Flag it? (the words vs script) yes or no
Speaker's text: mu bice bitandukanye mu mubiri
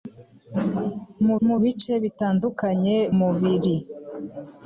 yes